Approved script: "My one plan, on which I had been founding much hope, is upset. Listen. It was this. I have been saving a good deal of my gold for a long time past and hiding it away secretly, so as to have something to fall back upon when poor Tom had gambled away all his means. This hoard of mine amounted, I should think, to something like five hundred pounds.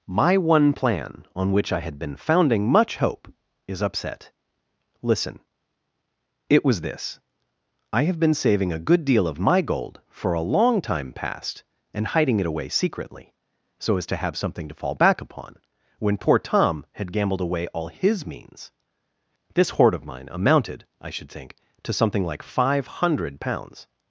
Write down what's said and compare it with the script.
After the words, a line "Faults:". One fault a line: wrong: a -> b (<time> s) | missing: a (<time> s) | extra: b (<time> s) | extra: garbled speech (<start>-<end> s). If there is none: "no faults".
"My one plan, on which I had been founding much hope, is upset. Listen. It was this. I have been saving a good deal of my gold for a long time past and hiding it away secretly, so as to have something to fall back upon when poor Tom had gambled away all his means. This hoard of mine amounted, I should think, to something like five hundred pounds.
Faults:
no faults